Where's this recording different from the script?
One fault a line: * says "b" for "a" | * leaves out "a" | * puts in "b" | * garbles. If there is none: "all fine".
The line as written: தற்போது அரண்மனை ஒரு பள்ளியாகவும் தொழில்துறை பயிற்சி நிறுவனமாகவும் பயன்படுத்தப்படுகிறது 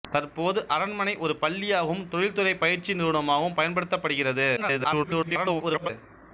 * garbles